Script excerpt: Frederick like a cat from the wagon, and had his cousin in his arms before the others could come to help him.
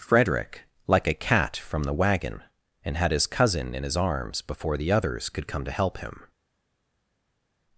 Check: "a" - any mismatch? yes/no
no